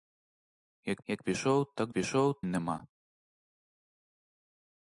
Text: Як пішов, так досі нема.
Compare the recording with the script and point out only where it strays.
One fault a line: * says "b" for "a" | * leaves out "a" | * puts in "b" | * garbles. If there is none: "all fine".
* puts in "як"
* says "пішов" for "досі"